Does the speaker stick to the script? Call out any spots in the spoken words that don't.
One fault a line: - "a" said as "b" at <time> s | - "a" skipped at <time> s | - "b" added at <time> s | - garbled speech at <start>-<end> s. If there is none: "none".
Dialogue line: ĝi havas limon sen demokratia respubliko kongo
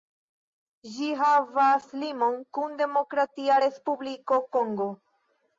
- "sen" said as "kun" at 2.6 s